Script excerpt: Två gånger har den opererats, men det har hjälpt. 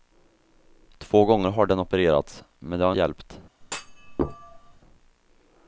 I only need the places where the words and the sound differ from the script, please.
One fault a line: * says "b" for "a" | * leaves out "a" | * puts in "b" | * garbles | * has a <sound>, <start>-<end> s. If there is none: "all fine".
* has a thud, 3.6-4.8 s